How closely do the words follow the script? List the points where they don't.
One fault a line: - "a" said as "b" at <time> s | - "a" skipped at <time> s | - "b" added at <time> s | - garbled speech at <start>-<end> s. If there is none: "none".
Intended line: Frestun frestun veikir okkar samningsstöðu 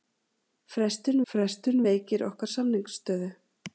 none